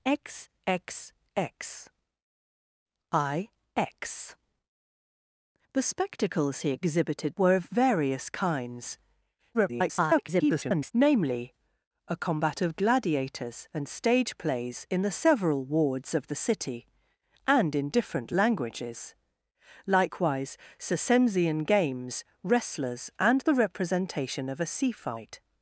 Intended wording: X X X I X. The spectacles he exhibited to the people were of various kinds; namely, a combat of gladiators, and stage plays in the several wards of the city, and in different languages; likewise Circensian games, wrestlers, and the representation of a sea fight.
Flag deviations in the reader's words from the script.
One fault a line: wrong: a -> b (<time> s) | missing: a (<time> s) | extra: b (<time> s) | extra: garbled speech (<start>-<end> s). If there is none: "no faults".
missing: to the people (7.3 s)
extra: garbled speech (9.5-10.9 s)